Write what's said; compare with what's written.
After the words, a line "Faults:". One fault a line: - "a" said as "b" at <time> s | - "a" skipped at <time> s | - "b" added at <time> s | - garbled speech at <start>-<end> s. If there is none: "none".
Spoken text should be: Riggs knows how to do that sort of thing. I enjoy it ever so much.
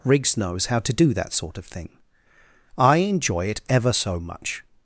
Riggs knows how to do that sort of thing. I enjoy it ever so much.
Faults:
none